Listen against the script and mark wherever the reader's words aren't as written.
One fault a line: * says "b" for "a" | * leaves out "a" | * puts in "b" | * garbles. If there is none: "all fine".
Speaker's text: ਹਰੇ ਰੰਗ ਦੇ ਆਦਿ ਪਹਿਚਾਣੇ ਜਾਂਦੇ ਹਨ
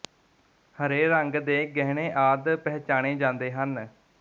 * puts in "ਗਹਿਣੇ"